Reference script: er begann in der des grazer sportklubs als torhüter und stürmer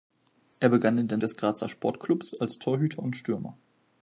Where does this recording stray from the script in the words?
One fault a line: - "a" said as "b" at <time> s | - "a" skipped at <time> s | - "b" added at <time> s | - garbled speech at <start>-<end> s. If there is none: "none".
none